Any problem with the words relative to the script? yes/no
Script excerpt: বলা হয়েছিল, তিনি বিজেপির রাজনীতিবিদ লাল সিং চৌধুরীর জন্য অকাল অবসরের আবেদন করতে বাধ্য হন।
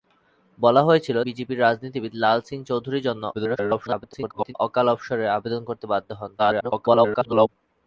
yes